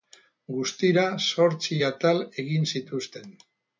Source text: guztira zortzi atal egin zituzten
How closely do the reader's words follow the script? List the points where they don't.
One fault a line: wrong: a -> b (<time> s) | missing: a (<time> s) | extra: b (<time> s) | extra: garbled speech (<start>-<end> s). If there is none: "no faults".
no faults